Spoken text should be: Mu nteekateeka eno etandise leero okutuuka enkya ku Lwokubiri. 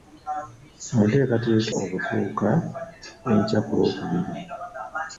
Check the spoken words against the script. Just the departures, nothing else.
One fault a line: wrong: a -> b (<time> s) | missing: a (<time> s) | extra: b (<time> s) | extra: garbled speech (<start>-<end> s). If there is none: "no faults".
missing: eno etandise leero (1.7 s)